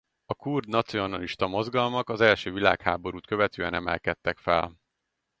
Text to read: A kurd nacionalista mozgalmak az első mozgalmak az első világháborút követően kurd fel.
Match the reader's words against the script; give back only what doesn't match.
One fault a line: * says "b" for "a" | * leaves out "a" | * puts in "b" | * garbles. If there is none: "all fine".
* leaves out "mozgalmak az első"
* says "emelkedtek" for "kurd"